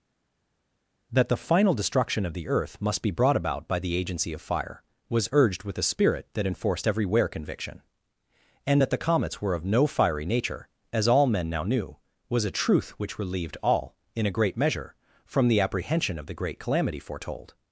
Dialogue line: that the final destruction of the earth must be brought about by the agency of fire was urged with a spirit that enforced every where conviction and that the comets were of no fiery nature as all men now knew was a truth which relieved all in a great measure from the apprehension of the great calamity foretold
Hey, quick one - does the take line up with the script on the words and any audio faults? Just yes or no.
yes